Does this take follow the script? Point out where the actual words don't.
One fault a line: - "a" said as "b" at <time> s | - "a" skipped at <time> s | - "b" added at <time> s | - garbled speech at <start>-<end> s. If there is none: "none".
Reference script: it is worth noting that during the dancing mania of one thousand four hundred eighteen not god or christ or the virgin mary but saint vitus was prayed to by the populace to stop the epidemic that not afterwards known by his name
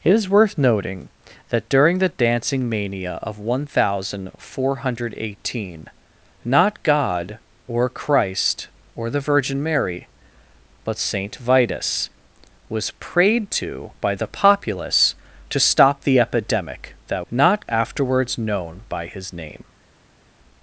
none